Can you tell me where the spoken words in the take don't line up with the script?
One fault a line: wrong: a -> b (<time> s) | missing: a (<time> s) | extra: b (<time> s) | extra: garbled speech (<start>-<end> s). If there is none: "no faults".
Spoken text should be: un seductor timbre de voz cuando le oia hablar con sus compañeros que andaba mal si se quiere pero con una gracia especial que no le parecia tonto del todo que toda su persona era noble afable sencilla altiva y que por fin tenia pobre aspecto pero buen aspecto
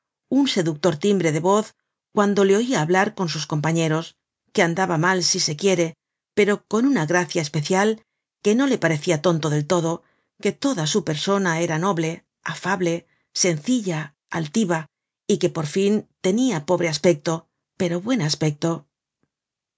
no faults